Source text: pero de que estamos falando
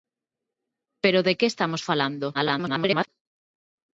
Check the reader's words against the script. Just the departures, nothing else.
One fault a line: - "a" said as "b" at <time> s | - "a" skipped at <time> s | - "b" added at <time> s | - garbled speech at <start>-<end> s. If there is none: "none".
- garbled speech at 2.3-3.1 s